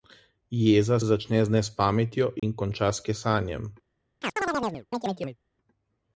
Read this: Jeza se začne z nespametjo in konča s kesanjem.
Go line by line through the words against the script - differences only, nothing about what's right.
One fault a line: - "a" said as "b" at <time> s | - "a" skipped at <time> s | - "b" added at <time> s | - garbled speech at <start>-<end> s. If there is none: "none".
- "se" skipped at 1.0 s